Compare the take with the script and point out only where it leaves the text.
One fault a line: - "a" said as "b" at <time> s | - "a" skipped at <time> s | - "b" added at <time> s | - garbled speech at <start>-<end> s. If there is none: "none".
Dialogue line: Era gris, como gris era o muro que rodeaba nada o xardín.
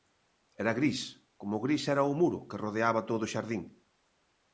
- "nada" said as "todo" at 3.1 s